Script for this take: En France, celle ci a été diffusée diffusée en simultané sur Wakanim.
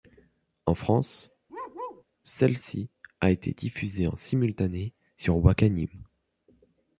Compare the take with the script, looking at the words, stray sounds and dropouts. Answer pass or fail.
fail